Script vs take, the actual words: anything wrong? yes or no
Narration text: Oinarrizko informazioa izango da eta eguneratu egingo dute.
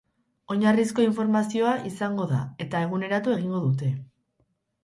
no